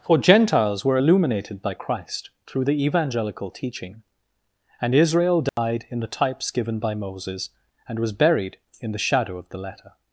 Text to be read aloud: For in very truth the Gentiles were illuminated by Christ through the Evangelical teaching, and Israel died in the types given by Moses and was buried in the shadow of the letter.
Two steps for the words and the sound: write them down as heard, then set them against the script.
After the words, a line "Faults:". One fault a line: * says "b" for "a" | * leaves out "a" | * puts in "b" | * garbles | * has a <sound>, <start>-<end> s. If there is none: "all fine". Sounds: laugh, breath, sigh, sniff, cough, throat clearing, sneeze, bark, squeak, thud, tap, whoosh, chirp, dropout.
For Gentiles were illuminated by Christ through the Evangelical teaching, and Israel died in the types given by Moses and was buried in the shadow of the letter.
Faults:
* leaves out "in very truth the"
* has a dropout, 5.5-5.6 s